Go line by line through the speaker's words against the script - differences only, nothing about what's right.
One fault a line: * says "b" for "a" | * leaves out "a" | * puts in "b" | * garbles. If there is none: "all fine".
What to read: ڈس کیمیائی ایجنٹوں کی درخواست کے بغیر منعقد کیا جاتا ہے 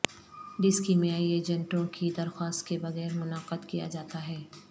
all fine